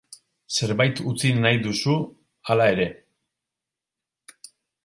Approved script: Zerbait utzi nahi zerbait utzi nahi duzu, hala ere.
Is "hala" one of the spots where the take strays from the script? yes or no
no